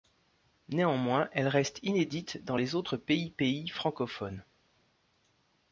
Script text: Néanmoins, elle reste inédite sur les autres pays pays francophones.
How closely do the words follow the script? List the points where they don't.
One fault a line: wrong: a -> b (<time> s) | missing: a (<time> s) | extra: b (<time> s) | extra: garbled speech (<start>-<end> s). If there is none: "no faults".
wrong: sur -> dans (2.4 s)